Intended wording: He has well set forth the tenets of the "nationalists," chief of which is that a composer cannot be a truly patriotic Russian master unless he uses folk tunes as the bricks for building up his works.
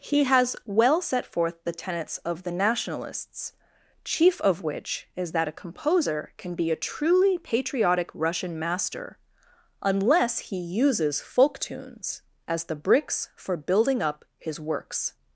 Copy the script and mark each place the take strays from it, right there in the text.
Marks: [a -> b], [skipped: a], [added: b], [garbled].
He has well set forth the tenets of the "nationalists," chief of which is that a composer [cannot -> can] be a truly patriotic Russian master unless he uses folk tunes as the bricks for building up his works.